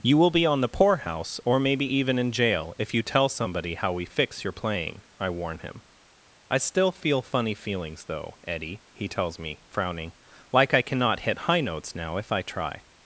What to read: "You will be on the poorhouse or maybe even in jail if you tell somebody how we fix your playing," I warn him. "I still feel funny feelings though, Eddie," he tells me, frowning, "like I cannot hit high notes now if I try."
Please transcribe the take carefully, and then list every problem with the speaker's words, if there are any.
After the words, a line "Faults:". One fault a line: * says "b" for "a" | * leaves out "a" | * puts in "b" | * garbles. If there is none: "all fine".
"You will be on the poorhouse or maybe even in jail if you tell somebody how we fix your playing," I warn him. "I still feel funny feelings though, Eddie," he tells me, frowning, "like I cannot hit high notes now if I try."
Faults:
all fine